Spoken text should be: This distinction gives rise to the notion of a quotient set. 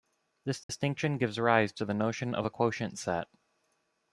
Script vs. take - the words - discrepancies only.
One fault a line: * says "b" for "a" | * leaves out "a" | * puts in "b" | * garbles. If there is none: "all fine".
all fine